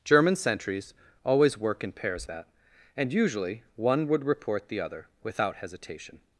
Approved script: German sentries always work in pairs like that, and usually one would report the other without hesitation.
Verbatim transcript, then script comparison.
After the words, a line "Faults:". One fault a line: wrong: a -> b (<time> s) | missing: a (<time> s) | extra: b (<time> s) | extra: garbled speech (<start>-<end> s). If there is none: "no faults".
German sentries always work in pairs that, and usually one would report the other without hesitation.
Faults:
missing: like (2.3 s)